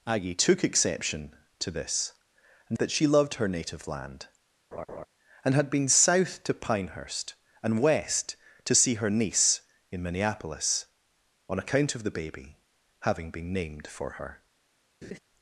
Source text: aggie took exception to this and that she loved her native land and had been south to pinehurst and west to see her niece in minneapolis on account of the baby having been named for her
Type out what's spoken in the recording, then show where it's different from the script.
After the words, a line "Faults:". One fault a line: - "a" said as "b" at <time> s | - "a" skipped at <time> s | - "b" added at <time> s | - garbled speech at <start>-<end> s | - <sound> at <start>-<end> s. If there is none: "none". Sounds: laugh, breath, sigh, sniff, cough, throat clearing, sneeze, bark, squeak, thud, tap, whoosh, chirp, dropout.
aggie took exception to this and that she loved her native land and had been south to pinehurst and west to see her niece in minneapolis on account of the baby having been named for her
Faults:
- laugh at 4.7-5.1 s
- laugh at 15.0-15.2 s